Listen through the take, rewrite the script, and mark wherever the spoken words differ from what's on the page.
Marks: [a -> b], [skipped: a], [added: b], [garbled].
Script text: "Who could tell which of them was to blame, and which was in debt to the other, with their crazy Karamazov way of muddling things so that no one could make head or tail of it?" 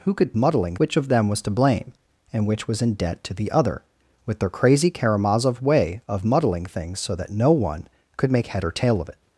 "Who could [tell -> muddling] which of them was to blame, and which was in debt to the other, with their crazy Karamazov way of muddling things so that no one could make head or tail of it?"